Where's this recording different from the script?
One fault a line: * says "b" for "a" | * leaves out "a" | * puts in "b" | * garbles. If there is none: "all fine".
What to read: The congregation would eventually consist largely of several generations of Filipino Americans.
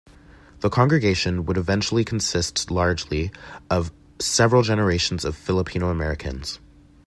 all fine